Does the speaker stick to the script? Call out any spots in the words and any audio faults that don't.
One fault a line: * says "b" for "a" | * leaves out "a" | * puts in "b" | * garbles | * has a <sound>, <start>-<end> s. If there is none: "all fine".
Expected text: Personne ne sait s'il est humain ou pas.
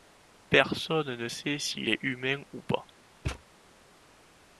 * has a thud, 3.2-3.4 s